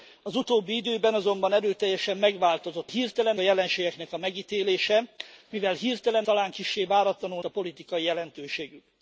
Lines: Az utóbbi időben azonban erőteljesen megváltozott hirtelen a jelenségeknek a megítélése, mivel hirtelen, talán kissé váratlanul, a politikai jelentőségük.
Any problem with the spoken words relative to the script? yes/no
no